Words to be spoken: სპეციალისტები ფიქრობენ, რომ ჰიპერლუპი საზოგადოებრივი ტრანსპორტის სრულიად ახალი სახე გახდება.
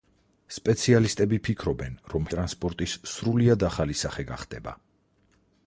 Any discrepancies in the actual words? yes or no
yes